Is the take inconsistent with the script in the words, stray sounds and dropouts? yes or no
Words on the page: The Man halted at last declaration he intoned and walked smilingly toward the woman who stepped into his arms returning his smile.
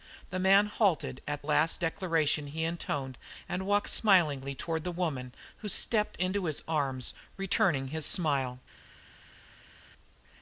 no